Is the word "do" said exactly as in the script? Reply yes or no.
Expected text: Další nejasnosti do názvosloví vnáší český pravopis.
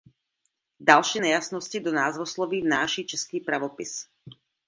yes